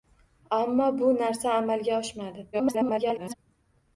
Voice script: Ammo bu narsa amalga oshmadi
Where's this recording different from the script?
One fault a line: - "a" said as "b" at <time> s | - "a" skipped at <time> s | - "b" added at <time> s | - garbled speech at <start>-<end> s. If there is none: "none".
- garbled speech at 2.5-3.3 s